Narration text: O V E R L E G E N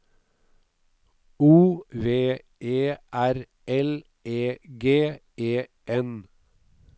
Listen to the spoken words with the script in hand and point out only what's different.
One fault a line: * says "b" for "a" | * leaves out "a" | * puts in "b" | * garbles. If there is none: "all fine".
all fine